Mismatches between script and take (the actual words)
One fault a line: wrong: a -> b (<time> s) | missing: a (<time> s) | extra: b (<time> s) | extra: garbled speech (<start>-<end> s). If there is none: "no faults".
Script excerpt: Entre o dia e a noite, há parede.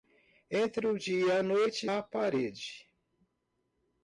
no faults